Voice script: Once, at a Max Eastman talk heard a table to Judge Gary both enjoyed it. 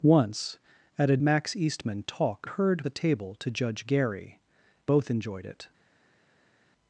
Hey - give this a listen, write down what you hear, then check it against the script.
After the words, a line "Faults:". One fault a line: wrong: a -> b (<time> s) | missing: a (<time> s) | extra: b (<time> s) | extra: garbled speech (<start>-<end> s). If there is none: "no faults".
Once, at a Max Eastman talk heard a table to Judge Gary both enjoyed it.
Faults:
no faults